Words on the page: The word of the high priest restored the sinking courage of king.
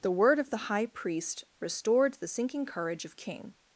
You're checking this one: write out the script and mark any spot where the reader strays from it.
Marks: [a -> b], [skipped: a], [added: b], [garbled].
The word of the high priest restored the sinking courage of king.